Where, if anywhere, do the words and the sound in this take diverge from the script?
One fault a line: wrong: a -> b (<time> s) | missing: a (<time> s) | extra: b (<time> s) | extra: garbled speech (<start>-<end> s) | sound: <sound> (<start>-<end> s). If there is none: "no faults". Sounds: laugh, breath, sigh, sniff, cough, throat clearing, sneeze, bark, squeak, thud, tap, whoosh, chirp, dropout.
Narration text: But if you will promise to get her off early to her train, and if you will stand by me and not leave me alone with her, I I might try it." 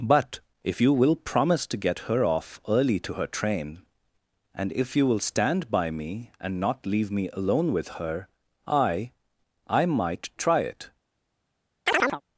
sound: chirp (11.9-12.2 s)